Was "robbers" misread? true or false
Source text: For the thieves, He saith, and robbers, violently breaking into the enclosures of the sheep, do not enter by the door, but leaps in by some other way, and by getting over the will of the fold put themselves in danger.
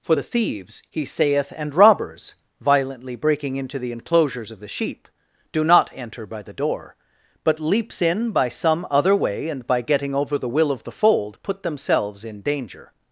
false